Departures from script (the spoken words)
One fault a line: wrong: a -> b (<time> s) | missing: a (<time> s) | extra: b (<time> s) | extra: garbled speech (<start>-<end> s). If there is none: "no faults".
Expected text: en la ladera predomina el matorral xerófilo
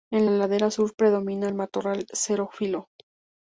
extra: sur (0.7 s)